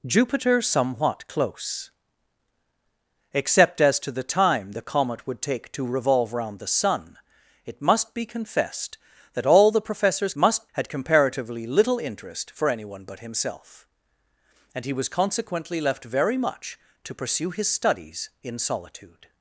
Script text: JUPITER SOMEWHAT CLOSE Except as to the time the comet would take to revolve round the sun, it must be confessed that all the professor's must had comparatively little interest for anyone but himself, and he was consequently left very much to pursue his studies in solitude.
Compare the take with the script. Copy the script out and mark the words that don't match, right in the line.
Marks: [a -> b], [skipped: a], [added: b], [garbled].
JUPITER SOMEWHAT CLOSE Except as to the time the comet would take to revolve round the sun, it must be confessed that all the professor's must had comparatively little interest for anyone but himself, and he was consequently left very much to pursue his studies in solitude.